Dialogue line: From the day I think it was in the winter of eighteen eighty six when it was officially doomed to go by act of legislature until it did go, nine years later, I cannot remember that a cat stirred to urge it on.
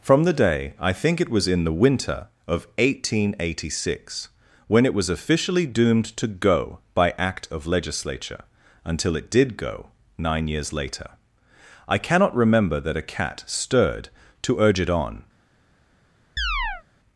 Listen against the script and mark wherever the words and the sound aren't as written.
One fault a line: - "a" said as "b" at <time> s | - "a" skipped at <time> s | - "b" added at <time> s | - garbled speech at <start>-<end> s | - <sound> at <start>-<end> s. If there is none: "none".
- chirp at 16.4-16.8 s